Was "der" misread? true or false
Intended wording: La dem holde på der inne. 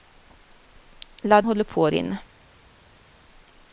true